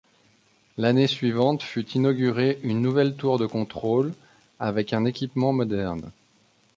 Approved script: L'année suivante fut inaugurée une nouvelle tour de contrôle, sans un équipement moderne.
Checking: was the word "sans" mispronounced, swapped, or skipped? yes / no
yes